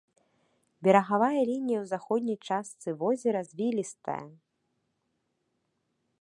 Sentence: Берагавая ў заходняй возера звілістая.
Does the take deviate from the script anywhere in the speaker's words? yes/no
yes